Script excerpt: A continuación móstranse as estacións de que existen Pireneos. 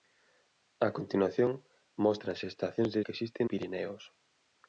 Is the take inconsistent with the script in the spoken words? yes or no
no